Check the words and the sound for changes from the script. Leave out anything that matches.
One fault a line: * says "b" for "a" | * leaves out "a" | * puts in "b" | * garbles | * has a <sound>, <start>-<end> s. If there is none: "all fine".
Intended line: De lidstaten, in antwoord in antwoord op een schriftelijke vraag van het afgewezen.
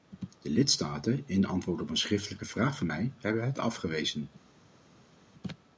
* leaves out "in antwoord"
* puts in "mij hebben"